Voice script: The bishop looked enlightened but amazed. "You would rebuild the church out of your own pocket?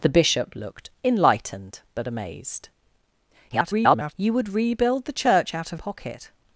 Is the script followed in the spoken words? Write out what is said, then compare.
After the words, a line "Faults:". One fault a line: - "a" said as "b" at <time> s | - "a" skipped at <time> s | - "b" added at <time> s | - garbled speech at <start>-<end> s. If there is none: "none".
The bishop looked enlightened but amazed. [garbled] "You would rebuild the church out of pocket?
Faults:
- garbled speech at 3.5-4.1 s
- "your own" skipped at 5.8 s